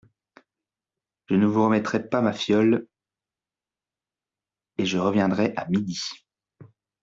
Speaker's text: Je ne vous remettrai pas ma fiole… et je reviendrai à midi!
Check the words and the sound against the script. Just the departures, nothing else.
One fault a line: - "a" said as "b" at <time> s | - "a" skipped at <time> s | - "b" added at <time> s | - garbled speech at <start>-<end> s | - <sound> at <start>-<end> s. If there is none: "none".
none